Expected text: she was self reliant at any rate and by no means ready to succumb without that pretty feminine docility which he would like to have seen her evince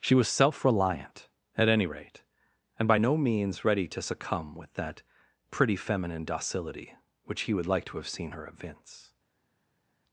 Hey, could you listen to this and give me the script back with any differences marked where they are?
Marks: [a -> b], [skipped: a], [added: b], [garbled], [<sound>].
she was self reliant at any rate and by no means ready to succumb [without -> with] that pretty feminine docility which he would like to have seen her evince